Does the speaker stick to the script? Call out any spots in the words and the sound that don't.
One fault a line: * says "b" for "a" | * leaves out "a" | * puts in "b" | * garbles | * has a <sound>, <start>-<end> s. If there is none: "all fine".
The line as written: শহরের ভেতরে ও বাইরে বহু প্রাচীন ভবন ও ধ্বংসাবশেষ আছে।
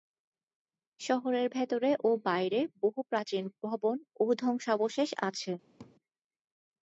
* has a laugh, 5.8-6.0 s